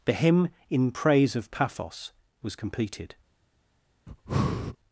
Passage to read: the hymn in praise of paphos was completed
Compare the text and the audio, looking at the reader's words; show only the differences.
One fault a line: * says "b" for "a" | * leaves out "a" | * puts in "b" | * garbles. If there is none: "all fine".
all fine